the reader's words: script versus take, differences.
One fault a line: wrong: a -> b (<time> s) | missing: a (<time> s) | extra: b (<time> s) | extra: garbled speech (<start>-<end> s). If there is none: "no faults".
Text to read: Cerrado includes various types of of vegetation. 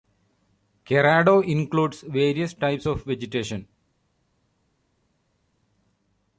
missing: of (3.0 s)